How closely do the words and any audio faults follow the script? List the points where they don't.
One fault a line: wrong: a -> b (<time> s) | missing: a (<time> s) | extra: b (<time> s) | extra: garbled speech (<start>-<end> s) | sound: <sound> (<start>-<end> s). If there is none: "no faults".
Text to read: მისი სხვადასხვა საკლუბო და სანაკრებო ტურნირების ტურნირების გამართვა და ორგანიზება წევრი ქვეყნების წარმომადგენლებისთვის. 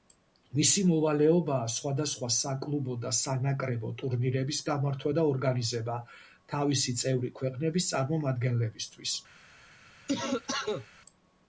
extra: მოვალეობაა (0.9 s)
missing: ტურნირების (4.6 s)
extra: თავისი (6.5 s)
sound: cough (10.1-10.9 s)